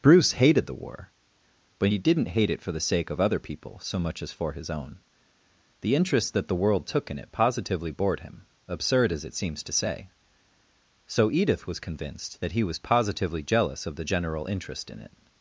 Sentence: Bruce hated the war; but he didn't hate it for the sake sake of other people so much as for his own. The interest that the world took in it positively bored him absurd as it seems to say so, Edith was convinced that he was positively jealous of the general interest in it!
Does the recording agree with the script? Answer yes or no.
no